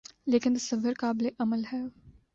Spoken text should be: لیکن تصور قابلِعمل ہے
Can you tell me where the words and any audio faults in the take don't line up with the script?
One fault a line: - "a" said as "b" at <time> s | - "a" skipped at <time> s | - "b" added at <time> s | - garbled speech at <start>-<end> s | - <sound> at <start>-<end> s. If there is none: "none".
none